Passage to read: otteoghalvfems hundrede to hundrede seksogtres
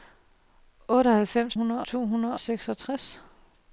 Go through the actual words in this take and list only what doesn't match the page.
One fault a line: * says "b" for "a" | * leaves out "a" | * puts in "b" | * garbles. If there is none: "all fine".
all fine